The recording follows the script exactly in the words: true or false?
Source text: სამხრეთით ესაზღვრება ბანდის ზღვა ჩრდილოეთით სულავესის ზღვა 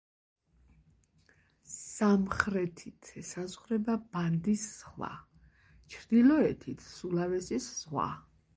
true